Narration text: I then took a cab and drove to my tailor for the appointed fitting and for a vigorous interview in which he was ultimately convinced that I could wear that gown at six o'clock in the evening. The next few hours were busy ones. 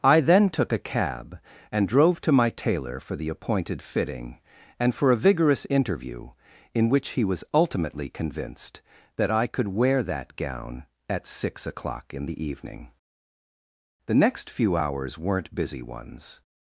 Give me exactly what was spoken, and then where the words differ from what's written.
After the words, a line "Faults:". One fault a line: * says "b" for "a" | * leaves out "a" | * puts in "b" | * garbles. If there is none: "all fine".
I then took a cab and drove to my tailor for the appointed fitting and for a vigorous interview in which he was ultimately convinced that I could wear that gown at six o'clock in the evening. The next few hours weren't busy ones.
Faults:
* says "weren't" for "were"